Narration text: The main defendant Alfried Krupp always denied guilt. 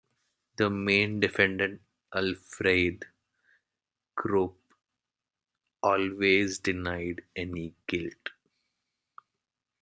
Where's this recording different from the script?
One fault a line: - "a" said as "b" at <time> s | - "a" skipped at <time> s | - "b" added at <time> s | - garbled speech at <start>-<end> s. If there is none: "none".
- "any" added at 7.4 s